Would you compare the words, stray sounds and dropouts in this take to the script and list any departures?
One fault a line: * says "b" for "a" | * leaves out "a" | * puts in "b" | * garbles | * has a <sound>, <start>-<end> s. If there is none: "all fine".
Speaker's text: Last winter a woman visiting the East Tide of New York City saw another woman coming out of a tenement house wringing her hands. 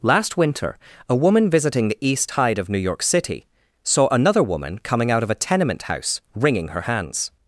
all fine